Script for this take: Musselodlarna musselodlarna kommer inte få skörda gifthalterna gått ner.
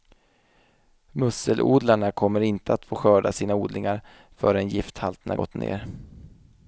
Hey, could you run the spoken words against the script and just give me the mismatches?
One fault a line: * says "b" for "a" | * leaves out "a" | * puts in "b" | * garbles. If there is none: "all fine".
* leaves out "musselodlarna"
* puts in "att"
* puts in "sina odlingar förrän"